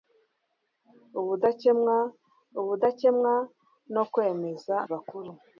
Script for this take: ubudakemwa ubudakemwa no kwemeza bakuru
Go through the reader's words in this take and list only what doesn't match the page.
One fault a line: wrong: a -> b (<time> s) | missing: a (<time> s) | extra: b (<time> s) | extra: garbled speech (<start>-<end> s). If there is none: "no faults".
no faults